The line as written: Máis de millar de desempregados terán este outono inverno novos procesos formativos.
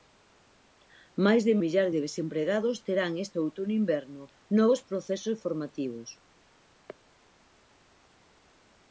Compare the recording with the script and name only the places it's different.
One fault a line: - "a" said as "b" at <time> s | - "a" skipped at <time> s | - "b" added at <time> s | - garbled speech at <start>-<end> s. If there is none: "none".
none